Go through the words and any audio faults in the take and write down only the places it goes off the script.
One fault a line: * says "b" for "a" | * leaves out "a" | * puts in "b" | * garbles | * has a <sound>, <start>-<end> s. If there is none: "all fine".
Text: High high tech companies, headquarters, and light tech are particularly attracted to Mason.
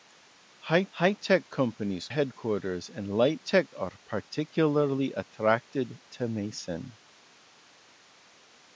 all fine